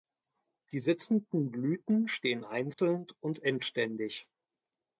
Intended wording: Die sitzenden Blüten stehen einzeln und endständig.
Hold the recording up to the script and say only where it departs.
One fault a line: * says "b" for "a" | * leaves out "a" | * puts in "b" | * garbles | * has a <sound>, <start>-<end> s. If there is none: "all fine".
* has a dropout, 2.7-2.8 s